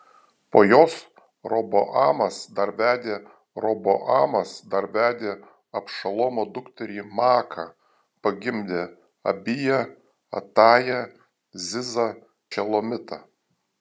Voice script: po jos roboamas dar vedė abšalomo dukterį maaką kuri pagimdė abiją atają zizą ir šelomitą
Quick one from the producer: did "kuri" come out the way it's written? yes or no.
no